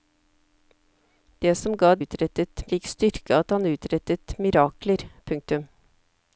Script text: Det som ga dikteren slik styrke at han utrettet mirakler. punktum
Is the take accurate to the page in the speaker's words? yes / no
no